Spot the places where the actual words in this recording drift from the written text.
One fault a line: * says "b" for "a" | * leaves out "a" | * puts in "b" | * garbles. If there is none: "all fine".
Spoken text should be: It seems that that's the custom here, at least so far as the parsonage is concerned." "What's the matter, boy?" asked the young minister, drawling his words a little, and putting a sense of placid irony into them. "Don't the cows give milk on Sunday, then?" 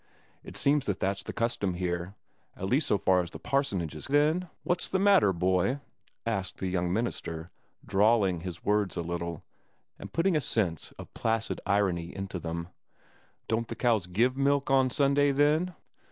* says "then" for "concerned"